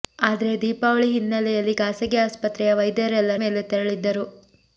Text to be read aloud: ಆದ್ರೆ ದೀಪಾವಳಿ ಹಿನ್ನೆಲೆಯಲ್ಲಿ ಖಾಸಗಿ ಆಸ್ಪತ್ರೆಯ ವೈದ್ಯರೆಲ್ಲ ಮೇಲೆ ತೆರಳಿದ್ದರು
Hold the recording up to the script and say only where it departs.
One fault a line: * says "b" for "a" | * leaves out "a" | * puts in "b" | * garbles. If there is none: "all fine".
all fine